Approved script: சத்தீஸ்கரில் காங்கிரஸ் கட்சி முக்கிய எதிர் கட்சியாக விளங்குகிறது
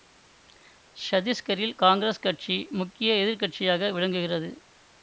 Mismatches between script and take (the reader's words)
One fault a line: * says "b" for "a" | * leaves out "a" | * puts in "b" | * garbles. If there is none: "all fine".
all fine